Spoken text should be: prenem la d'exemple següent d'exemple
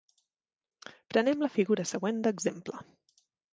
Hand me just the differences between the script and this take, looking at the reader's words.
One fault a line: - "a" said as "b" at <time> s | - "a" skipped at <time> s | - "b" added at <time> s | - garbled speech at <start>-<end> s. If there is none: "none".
- "d'exemple" said as "figura" at 1.6 s